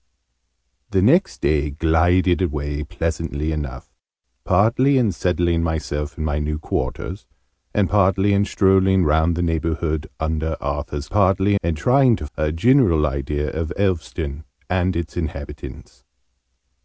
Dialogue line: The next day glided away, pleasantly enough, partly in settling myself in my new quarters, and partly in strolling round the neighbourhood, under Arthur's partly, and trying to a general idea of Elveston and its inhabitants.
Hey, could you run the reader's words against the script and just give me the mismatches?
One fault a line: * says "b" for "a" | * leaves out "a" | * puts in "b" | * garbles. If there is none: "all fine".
all fine